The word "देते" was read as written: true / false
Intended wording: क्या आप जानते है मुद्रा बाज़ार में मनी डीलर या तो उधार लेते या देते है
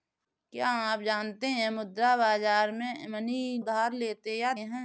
false